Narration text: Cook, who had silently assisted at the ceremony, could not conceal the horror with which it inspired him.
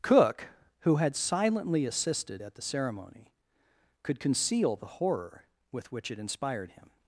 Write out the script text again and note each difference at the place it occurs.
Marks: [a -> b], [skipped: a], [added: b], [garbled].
Cook, who had silently assisted at the ceremony, could [skipped: not] conceal the horror with which it inspired him.